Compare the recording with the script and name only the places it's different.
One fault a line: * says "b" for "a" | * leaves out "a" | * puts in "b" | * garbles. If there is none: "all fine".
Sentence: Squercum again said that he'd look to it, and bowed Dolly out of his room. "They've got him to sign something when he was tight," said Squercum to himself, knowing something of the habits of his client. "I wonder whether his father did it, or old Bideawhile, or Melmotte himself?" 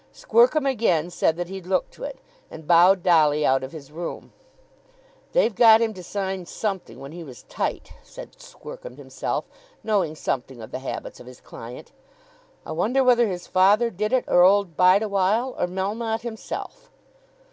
* leaves out "to"